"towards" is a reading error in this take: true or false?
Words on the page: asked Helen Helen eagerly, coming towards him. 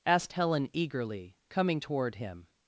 true